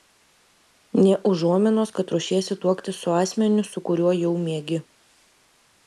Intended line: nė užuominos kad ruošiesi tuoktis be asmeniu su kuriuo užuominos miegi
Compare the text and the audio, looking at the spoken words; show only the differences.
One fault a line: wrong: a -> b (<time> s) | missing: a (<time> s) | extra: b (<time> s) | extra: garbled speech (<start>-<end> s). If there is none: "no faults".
wrong: be -> su (3.1 s)
wrong: užuominos -> jau (4.2 s)